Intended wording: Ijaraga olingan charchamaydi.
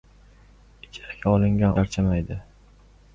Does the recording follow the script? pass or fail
pass